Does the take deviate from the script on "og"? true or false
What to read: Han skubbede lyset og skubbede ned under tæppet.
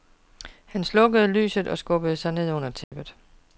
false